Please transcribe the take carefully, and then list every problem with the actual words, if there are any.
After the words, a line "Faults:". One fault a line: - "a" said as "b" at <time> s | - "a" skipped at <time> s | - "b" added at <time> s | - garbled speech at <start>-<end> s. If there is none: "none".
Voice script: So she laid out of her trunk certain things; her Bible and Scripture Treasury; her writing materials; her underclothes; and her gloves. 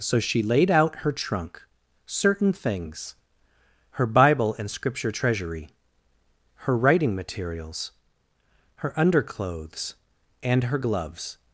So she laid out her trunk certain things; her Bible and Scripture Treasury; her writing materials; her underclothes; and her gloves.
Faults:
- "of" skipped at 1.0 s